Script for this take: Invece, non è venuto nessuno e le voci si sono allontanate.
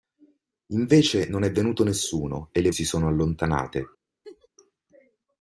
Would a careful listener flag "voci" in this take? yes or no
yes